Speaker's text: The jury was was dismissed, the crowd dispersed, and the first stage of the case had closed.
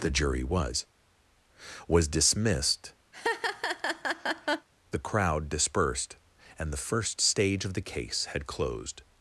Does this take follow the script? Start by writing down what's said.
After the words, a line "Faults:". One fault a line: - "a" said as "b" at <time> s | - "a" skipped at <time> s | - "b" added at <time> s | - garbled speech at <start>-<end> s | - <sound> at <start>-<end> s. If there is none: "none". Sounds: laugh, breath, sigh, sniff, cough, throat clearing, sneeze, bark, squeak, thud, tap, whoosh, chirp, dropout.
The jury was was dismissed, the crowd dispersed, and the first stage of the case had closed.
Faults:
- laugh at 3.1-4.7 s